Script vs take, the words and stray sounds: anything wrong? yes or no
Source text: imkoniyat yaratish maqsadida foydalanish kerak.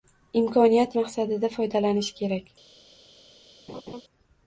yes